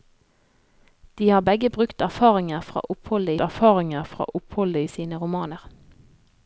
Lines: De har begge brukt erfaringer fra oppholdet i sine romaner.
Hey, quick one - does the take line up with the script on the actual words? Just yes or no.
no